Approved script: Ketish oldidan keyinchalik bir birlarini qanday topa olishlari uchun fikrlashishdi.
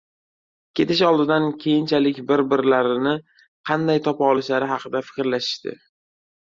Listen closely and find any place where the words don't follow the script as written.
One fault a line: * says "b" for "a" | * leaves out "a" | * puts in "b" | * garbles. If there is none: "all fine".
* says "haqida" for "uchun"